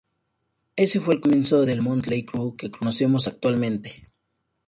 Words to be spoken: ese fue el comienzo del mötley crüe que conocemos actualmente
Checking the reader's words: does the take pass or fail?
pass